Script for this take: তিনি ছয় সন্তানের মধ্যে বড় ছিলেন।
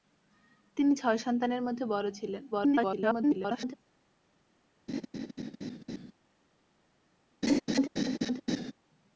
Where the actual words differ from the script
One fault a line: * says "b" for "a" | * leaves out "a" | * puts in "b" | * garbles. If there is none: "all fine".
* garbles